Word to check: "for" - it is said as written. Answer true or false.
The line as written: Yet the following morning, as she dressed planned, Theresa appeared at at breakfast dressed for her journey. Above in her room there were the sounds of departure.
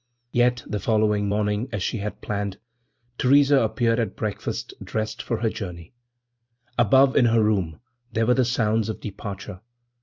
true